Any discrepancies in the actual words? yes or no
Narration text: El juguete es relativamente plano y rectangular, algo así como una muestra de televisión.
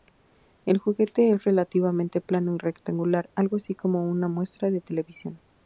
no